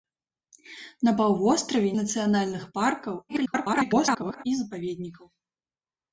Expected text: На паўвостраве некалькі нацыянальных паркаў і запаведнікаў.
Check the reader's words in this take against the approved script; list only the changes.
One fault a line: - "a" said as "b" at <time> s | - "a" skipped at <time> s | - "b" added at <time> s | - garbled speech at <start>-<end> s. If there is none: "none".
- "некалькі" skipped at 1.9 s
- garbled speech at 3.3-4.4 s